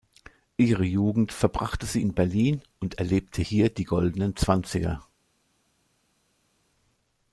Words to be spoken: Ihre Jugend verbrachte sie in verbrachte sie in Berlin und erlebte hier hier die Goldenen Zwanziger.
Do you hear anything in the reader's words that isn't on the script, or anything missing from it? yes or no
yes